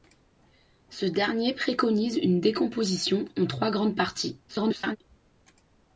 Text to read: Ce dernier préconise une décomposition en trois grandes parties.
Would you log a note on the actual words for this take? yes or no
yes